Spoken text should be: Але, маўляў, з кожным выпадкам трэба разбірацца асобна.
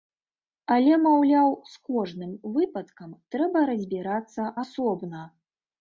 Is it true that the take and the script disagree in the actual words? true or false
false